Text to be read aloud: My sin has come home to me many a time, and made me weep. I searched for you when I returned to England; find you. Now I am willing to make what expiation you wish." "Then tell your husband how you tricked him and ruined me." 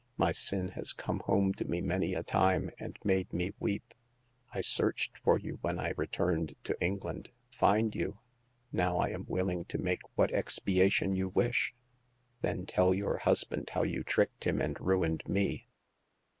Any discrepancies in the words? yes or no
no